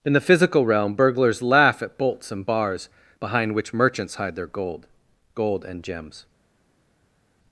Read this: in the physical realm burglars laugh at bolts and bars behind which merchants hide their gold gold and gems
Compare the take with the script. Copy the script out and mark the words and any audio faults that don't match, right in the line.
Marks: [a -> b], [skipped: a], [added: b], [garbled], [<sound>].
in the physical realm burglars laugh at bolts and bars behind which merchants hide their gold gold and gems